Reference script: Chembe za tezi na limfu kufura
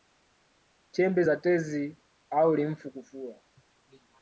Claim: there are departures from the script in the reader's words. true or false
true